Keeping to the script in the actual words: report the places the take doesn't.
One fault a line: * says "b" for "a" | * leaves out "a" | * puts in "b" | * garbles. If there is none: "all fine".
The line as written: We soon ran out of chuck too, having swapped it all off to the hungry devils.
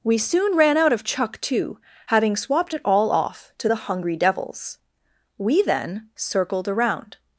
* puts in "We then circled around"